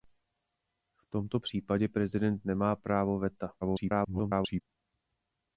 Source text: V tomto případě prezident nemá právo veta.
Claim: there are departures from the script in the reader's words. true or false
true